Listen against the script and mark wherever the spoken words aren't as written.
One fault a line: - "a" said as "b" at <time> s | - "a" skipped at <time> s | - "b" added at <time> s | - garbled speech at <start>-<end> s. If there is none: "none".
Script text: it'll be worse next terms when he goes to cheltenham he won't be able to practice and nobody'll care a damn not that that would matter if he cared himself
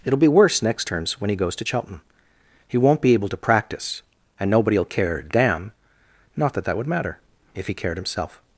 none